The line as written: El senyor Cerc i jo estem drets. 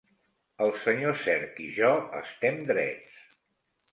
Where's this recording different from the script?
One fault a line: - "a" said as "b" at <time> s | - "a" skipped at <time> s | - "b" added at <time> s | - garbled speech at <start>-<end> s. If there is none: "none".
none